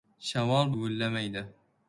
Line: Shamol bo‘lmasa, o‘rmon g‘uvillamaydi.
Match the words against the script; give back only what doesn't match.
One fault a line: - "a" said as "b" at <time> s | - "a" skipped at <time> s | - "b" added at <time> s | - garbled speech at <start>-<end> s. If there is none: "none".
- "bo‘lmasa o‘rmon" skipped at 0.7 s